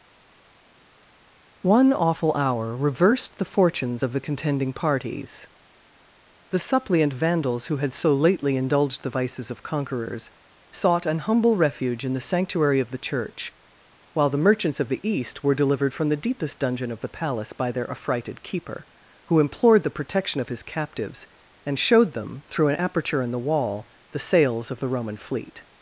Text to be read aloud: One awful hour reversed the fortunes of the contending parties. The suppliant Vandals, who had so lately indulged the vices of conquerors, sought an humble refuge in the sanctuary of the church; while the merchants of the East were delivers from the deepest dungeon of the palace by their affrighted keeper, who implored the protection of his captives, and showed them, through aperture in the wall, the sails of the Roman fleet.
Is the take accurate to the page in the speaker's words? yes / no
no